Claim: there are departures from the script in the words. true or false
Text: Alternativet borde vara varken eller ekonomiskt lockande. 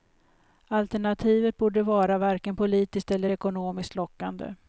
true